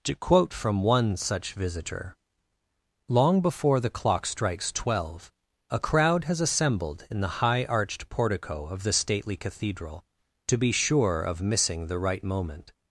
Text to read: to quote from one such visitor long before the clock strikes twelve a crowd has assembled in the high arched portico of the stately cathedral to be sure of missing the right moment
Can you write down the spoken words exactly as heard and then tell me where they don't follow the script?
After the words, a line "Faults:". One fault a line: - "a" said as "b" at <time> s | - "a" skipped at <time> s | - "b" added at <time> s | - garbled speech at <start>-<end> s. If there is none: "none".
to quote from one such visitor long before the clock strikes twelve a crowd has assembled in the high arched portico of the stately cathedral to be sure of missing the right moment
Faults:
none